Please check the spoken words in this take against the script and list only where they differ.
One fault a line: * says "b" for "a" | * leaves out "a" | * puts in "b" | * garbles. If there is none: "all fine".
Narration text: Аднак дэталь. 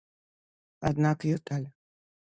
all fine